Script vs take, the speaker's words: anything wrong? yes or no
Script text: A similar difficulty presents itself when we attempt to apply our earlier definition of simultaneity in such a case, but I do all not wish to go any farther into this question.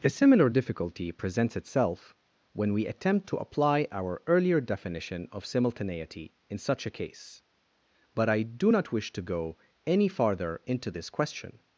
yes